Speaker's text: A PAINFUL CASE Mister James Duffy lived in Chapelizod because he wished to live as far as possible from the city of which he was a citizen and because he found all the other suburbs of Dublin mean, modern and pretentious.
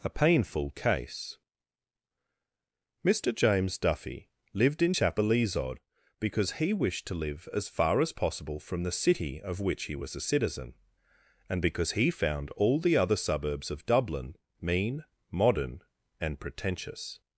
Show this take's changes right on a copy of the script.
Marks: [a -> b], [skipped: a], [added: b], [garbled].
A PAINFUL CASE Mister James Duffy lived in Chapelizod because he wished to live as far as possible from the city of which he was a citizen and because he found all the other suburbs of Dublin mean, modern and pretentious.